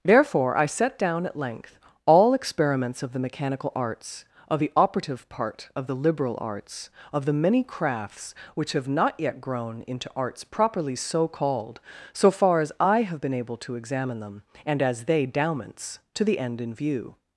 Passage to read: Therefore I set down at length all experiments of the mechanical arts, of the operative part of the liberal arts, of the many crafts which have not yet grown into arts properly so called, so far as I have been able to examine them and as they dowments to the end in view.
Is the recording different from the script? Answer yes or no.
no